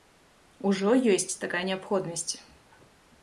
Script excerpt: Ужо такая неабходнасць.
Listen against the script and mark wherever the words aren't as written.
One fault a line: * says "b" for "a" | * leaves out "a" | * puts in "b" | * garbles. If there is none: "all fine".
* puts in "ёсць"